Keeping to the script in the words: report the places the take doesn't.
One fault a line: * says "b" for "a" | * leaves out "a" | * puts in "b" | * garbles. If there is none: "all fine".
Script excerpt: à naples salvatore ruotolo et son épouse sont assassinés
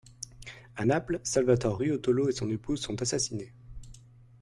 all fine